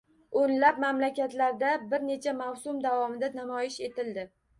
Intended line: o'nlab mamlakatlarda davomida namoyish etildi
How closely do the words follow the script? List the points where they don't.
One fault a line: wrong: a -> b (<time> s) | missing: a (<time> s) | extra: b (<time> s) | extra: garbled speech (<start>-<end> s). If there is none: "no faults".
extra: bir necha mavsum (1.9 s)